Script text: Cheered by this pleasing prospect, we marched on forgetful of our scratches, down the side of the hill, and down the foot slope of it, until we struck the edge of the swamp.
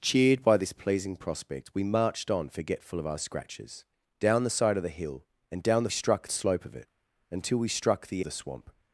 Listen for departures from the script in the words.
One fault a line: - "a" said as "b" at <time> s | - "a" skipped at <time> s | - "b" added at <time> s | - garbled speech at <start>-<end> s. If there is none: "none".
- "foot" said as "struck" at 5.9 s
- "edge of" skipped at 8.2 s